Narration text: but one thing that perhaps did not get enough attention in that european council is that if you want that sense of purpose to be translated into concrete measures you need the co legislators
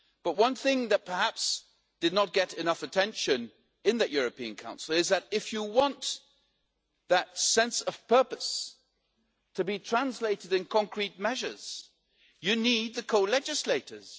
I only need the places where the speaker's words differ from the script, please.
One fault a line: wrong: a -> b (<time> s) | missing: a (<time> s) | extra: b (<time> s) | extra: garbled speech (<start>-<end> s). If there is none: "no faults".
no faults